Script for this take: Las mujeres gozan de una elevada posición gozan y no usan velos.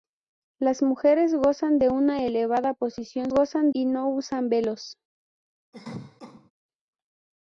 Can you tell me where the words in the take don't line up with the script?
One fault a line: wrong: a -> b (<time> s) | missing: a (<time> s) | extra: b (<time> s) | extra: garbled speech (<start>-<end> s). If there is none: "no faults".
no faults